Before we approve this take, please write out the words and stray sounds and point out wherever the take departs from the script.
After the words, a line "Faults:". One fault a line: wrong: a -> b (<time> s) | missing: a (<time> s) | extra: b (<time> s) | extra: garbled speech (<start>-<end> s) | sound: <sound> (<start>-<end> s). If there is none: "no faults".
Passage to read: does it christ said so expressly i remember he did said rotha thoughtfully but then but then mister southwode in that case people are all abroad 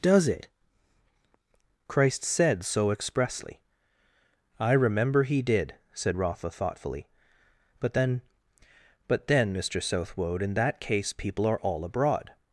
does it christ said so expressly i remember he did said rotha thoughtfully but then but then mister southwode in that case people are all abroad
Faults:
no faults